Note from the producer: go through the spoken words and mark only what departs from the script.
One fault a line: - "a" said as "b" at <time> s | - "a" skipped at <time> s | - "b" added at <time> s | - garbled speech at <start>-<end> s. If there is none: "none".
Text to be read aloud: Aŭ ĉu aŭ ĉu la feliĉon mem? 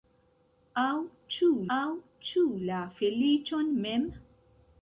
none